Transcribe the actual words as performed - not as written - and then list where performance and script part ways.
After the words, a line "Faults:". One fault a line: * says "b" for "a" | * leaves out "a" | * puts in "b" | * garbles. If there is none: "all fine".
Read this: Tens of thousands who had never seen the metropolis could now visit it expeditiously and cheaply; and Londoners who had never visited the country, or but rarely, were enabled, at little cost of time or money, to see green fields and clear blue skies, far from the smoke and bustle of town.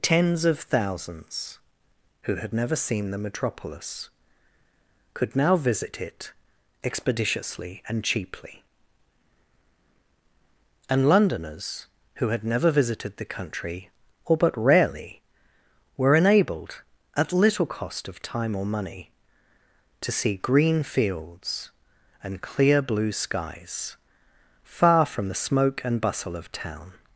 Tens of thousands who had never seen the metropolis could now visit it expeditiously and cheaply; and Londoners who had never visited the country, or but rarely, were enabled, at little cost of time or money, to see green fields and clear blue skies, far from the smoke and bustle of town.
Faults:
all fine